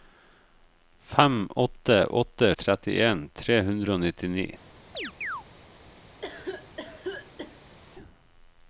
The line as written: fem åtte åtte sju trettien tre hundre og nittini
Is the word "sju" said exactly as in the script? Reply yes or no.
no